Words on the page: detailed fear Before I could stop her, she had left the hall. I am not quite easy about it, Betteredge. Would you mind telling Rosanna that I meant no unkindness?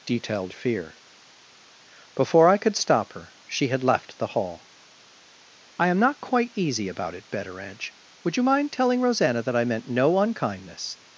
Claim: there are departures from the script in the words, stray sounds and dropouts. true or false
false